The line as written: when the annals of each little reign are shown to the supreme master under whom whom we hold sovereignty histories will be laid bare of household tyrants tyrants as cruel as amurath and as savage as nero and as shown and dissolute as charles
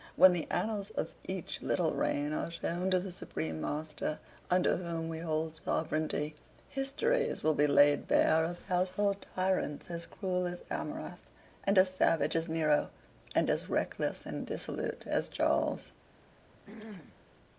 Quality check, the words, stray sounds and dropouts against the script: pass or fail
fail